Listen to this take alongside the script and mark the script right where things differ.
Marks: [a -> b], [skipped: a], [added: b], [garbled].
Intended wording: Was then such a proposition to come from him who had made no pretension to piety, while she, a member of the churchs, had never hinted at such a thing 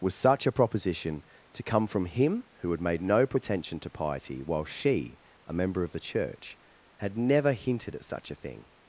Was [skipped: then] such a proposition to come from him who had made no pretension to piety, while she, a member of the [churchs, -> church] had never hinted at such a thing